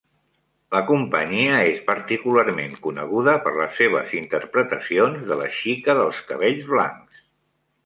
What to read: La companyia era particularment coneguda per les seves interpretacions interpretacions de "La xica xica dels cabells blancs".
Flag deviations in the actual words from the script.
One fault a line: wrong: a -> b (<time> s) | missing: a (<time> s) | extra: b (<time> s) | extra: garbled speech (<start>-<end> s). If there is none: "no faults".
wrong: era -> és (1.7 s)
missing: interpretacions (5.3 s)
missing: xica (6.0 s)